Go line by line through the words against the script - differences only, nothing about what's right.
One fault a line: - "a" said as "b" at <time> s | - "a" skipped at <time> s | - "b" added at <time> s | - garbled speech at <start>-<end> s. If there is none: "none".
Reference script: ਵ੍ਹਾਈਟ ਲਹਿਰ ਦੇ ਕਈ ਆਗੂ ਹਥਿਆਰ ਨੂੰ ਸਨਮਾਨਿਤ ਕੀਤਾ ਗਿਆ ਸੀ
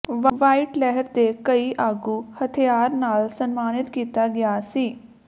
- "ਨੂੰ" said as "ਨਾਲ" at 2.9 s